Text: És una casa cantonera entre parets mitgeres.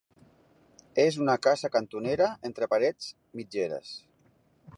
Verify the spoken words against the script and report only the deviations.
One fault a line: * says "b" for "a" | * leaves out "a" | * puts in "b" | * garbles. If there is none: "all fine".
all fine